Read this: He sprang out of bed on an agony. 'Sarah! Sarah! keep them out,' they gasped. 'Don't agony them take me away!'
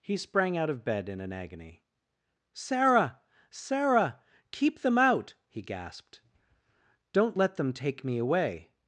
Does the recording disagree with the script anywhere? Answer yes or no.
yes